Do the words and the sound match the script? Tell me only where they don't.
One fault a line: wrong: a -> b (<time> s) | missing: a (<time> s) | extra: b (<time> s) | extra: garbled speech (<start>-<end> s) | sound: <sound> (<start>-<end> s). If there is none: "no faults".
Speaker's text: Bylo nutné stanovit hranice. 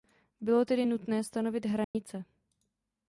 extra: tedy (0.6 s)
sound: dropout (1.8-1.9 s)